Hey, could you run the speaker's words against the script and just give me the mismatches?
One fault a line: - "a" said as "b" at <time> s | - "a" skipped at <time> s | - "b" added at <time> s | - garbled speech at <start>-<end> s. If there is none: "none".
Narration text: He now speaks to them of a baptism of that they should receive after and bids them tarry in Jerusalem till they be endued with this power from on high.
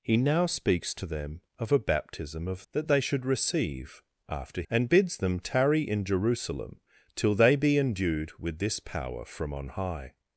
none